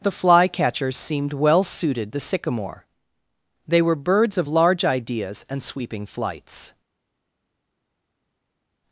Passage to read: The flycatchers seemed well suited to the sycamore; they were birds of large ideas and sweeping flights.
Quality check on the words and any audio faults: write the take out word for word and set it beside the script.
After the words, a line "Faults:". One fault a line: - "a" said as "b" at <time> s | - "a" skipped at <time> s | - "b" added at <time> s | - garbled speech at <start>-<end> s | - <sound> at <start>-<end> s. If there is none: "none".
The flycatchers seemed well suited the sycamore; they were birds of large ideas and sweeping flights.
Faults:
- "to" skipped at 2.1 s